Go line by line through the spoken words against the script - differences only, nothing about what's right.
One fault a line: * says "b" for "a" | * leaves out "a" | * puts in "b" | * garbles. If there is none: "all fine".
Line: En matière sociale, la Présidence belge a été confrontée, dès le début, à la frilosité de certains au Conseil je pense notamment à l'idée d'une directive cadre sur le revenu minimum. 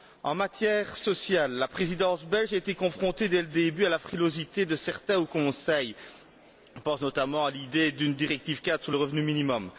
all fine